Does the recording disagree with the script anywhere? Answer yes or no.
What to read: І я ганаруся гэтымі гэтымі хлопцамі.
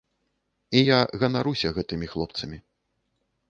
yes